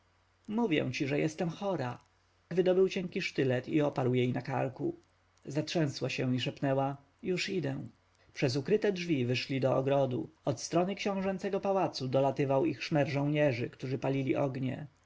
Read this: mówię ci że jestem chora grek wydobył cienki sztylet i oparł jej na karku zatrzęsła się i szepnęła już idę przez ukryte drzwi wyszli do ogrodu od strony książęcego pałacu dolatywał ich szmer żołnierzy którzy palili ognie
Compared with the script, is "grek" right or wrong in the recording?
wrong